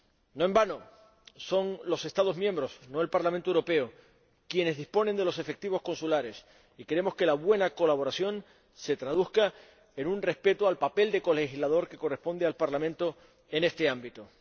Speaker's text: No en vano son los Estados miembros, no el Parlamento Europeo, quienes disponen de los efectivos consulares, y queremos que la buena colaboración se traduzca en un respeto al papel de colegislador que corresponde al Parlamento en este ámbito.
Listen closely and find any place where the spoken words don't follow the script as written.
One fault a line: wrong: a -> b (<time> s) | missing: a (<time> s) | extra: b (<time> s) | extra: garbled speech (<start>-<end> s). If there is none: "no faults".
no faults